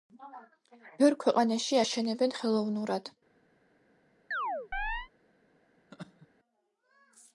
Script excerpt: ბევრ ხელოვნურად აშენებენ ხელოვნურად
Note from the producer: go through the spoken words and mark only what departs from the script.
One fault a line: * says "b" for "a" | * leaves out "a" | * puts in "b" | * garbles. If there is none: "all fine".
* says "ქვეყანაში" for "ხელოვნურად"